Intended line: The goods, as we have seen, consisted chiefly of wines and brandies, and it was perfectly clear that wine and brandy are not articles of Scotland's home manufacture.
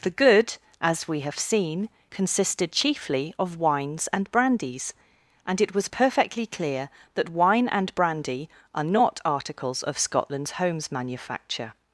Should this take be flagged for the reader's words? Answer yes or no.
yes